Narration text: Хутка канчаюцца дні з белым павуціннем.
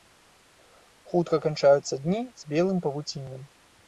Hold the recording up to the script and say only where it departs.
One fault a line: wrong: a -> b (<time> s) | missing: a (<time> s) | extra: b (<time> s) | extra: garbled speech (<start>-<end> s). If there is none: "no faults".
no faults